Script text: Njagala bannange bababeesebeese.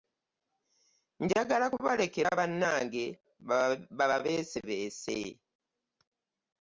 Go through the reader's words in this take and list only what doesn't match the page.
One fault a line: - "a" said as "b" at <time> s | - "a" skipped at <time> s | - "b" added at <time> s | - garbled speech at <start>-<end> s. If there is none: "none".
- "kubalekera" added at 1.7 s